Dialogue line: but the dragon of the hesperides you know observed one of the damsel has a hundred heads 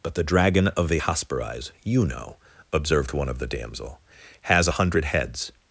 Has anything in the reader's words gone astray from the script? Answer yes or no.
no